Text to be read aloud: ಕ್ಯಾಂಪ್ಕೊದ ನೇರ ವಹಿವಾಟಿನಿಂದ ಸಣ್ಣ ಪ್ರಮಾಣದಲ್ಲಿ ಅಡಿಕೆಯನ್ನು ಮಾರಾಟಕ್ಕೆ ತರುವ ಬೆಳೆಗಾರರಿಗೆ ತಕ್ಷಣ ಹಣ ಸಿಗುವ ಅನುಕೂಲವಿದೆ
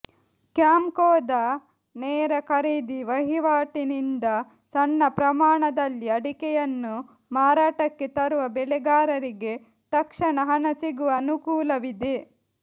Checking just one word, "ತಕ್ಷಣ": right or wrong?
right